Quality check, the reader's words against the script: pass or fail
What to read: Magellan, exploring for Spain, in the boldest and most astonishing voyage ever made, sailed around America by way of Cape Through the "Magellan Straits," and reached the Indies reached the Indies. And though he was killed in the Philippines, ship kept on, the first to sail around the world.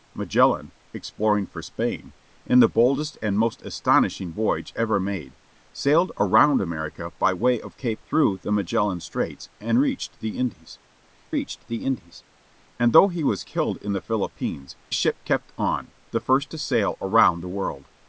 pass